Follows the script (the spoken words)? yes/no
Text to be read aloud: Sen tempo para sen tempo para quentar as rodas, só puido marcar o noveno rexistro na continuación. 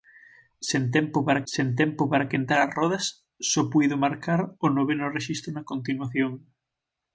yes